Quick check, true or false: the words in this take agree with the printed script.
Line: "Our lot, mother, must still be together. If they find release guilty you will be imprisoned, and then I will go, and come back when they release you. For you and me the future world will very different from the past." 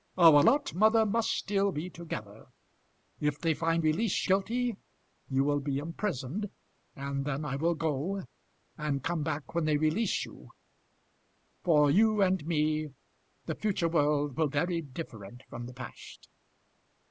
true